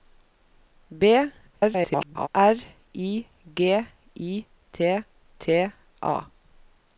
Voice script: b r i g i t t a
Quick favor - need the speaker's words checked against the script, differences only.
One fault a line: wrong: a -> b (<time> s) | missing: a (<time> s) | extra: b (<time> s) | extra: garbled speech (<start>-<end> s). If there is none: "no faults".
extra: garbled speech (1.5-2.3 s)